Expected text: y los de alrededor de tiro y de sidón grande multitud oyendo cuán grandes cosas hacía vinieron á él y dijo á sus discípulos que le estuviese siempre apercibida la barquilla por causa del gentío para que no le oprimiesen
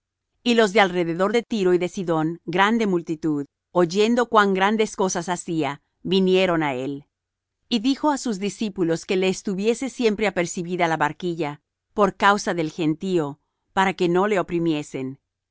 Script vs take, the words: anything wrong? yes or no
no